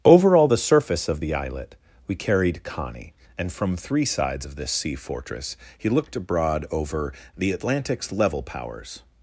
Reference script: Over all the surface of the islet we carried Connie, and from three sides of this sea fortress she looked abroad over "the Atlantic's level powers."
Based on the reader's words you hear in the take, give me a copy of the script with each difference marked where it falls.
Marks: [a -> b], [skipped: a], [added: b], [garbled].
Over all the surface of the islet we carried Connie, and from three sides of this sea fortress [she -> he] looked abroad over "the Atlantic's level powers."